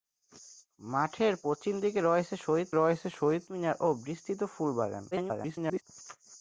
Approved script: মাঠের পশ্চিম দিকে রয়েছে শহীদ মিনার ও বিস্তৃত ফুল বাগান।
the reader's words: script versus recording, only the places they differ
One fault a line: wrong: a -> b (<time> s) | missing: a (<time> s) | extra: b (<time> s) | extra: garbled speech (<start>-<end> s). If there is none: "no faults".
extra: রয়েছে শহীদ (2.7 s)
extra: garbled speech (5.1-5.8 s)